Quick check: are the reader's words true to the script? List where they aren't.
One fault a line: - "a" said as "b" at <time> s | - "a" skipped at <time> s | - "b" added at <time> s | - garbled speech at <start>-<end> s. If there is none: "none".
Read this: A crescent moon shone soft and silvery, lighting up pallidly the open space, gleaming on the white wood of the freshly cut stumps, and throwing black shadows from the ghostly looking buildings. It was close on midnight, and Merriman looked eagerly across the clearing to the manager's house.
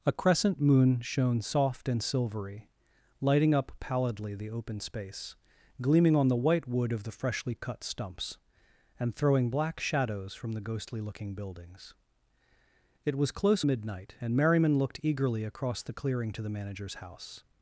- "on" skipped at 13.6 s